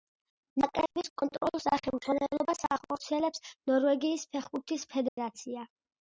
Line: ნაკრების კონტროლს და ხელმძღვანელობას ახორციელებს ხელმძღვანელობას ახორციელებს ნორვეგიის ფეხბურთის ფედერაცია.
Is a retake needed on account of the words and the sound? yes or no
yes